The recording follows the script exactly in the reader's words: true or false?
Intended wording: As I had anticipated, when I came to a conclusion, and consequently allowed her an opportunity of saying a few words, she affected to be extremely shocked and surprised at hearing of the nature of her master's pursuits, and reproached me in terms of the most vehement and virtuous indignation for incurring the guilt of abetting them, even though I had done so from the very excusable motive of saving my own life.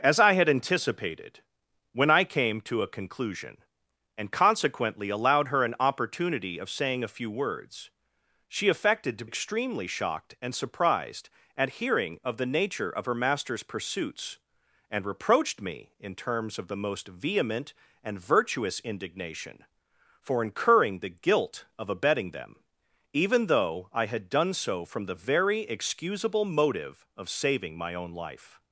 false